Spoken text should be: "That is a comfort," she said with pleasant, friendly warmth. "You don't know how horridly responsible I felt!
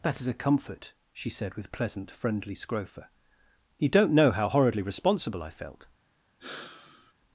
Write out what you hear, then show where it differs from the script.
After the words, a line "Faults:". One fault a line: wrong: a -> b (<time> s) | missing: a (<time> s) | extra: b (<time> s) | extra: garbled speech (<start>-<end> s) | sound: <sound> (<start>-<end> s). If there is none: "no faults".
"That is a comfort," she said with pleasant, friendly scrofa. "You don't know how horridly responsible I felt!
Faults:
wrong: warmth -> scrofa (2.5 s)
sound: sigh (6.4-7.1 s)